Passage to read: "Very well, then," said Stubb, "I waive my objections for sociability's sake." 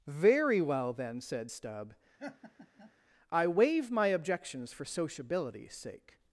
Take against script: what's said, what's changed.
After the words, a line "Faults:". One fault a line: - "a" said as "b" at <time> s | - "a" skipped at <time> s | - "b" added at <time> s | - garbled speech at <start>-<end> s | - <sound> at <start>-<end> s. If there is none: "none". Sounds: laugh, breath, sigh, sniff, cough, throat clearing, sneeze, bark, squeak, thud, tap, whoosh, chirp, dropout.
"Very well, then," said Stubb, "I waive my objections for sociability's sake."
Faults:
- laugh at 2.2-2.9 s